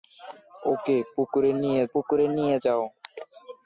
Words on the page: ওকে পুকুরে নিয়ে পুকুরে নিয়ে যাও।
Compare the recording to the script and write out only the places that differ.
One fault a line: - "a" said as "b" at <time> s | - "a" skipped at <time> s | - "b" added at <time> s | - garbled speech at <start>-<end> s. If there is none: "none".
none